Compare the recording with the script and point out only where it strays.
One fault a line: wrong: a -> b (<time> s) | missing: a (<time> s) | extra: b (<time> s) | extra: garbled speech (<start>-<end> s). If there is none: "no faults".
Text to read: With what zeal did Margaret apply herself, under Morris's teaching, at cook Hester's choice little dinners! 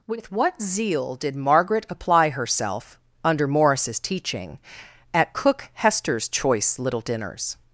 no faults